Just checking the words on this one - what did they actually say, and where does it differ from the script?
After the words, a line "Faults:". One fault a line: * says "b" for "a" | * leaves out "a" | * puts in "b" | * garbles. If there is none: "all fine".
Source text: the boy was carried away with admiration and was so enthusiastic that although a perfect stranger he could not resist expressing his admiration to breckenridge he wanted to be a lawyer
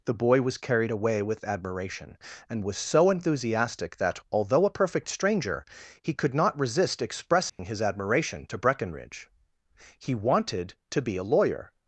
the boy was carried away with admiration and was so enthusiastic that although a perfect stranger he could not resist expressing his admiration to breckenridge he wanted to be a lawyer
Faults:
all fine